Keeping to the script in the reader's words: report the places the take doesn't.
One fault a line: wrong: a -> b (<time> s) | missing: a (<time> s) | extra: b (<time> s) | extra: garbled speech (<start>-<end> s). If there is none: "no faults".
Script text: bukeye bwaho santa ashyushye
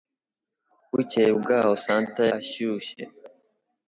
no faults